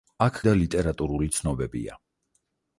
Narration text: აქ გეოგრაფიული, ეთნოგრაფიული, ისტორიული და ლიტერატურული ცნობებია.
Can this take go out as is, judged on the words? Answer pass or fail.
fail